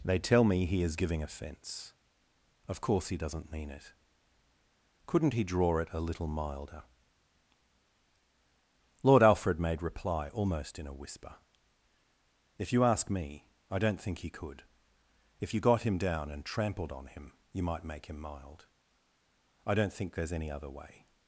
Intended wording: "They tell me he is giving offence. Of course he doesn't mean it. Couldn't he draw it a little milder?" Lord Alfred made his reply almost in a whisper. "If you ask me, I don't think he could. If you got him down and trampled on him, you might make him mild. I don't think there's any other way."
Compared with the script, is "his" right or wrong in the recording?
wrong